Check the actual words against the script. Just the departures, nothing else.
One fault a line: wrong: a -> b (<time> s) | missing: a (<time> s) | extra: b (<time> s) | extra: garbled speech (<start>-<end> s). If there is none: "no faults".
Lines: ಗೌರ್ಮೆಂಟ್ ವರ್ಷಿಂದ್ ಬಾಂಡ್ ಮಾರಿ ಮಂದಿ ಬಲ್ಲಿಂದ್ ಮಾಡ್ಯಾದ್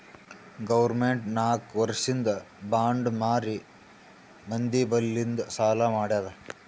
extra: ನಾಕ್ (1.4 s)
extra: ಸಾಲಾ (5.5 s)